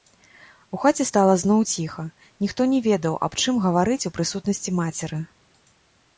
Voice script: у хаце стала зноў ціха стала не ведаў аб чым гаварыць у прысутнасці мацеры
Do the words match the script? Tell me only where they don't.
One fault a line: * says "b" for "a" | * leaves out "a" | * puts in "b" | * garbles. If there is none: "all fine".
* says "ніхто" for "стала"